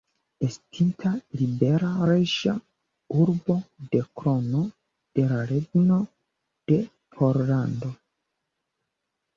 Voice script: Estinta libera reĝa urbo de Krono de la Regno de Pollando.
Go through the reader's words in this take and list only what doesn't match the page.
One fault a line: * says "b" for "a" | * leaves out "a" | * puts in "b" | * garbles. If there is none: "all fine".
all fine